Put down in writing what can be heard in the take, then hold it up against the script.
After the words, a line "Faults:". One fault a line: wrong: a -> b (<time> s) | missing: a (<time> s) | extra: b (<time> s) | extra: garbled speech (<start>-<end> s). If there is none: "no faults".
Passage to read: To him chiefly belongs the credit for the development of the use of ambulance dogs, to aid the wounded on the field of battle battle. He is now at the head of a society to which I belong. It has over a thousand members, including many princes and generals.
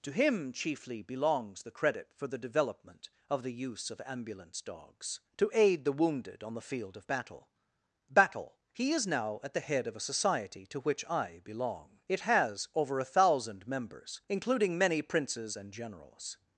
To him chiefly belongs the credit for the development of the use of ambulance dogs, to aid the wounded on the field of battle battle. He is now at the head of a society to which I belong. It has over a thousand members, including many princes and generals.
Faults:
no faults